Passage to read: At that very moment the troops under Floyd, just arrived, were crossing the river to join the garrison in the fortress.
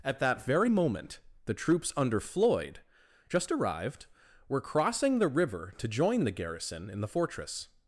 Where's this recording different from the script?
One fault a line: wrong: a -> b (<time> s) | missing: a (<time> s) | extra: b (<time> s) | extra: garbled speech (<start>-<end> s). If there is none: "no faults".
no faults